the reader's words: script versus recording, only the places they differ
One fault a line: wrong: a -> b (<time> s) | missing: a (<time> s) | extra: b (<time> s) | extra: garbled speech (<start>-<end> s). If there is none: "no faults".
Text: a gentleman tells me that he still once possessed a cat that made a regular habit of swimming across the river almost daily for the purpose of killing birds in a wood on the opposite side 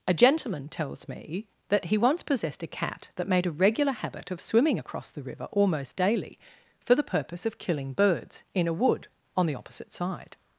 missing: still (2.0 s)